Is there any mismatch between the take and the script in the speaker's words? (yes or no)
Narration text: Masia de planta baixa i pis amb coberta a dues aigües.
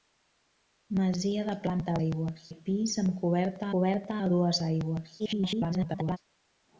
yes